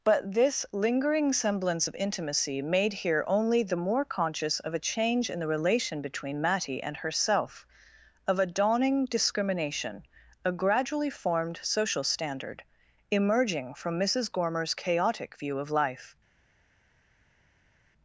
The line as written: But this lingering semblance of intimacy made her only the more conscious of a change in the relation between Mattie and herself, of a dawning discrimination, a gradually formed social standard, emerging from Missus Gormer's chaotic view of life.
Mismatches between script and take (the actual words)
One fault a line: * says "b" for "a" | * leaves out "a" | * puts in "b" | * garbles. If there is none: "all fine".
* says "here" for "her"